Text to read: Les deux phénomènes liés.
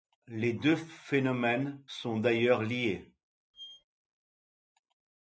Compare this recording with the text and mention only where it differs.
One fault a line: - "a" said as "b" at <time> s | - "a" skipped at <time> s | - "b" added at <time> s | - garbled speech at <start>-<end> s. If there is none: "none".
- "sont d'ailleurs" added at 1.8 s